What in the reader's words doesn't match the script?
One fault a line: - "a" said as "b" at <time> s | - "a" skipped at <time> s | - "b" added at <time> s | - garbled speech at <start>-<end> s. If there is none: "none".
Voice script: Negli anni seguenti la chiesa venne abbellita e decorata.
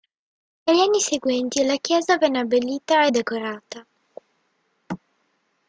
none